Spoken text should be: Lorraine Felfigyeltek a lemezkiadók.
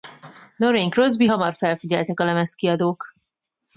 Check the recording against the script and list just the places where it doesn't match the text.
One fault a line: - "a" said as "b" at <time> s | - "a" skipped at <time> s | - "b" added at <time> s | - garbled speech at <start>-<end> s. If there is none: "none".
- "Crosby hamar" added at 0.9 s